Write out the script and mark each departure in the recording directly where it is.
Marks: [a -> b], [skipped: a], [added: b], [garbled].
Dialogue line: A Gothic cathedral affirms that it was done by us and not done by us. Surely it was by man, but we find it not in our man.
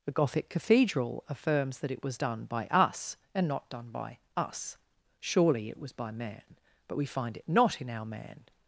[A -> The] Gothic cathedral affirms that it was done by us and not done by us. Surely it was by man, but we find it not in our man.